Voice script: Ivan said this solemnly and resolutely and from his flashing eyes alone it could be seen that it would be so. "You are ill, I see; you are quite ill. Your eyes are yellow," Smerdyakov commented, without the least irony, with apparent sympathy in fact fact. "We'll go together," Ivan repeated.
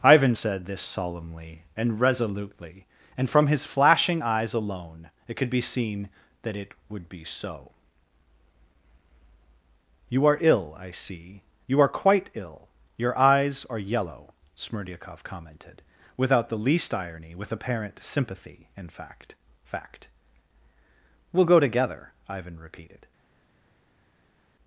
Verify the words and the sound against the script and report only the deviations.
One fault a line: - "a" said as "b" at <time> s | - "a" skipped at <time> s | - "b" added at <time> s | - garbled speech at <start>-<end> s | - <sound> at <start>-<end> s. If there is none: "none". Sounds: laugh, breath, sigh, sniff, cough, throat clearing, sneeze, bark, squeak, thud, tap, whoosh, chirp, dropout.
none